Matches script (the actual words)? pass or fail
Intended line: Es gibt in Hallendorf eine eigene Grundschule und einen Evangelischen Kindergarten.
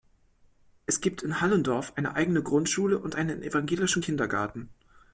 pass